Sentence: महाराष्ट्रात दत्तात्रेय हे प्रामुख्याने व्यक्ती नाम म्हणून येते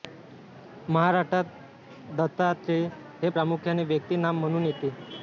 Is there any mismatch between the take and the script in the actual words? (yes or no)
no